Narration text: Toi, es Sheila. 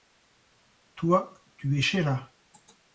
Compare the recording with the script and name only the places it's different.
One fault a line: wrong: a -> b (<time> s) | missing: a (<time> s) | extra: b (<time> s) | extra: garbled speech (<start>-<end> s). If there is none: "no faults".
extra: tu (1.6 s)